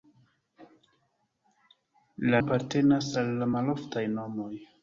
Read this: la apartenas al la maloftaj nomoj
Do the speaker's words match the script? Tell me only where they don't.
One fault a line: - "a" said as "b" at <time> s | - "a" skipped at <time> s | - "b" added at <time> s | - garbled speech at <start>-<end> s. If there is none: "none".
none